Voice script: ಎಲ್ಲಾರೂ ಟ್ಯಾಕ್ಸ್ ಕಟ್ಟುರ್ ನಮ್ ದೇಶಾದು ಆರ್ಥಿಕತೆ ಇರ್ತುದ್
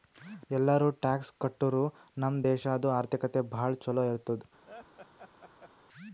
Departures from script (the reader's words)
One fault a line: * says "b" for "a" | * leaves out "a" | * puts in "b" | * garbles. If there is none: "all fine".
* puts in "ಭಾಳ ಛಲೋ"